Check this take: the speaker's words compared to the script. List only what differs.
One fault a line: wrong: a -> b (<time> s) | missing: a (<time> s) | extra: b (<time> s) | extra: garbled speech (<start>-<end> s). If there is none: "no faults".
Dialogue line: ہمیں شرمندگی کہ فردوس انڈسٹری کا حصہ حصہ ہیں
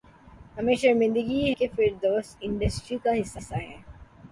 no faults